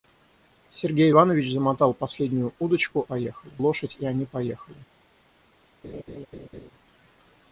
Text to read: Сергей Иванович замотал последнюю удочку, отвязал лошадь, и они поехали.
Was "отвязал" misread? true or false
true